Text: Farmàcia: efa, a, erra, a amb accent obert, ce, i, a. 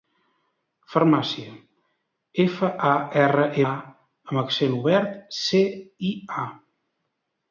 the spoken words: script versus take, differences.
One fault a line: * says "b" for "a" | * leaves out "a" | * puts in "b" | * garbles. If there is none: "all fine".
all fine